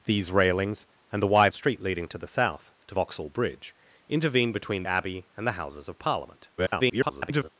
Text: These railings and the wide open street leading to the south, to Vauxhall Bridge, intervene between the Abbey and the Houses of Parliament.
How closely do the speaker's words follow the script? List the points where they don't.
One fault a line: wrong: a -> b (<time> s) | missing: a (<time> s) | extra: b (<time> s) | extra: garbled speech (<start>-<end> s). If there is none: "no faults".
missing: open (1.5 s)
missing: the (4.8 s)
extra: garbled speech (6.6-7.5 s)